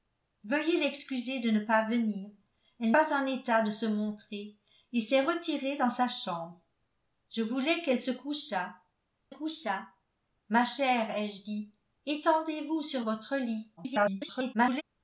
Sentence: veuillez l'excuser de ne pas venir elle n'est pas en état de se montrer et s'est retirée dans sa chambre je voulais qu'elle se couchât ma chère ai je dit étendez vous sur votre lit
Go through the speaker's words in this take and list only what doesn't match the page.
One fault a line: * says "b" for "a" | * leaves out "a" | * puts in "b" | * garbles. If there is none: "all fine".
* leaves out "n'est"
* puts in "couchât"
* garbles